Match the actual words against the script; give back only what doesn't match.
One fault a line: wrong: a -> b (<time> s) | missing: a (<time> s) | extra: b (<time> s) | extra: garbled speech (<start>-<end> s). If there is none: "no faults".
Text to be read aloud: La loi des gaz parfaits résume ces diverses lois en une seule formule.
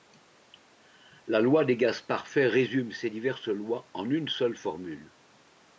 no faults